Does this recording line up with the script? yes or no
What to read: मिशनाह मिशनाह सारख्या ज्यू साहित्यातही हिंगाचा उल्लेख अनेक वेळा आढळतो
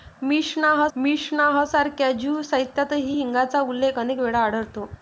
yes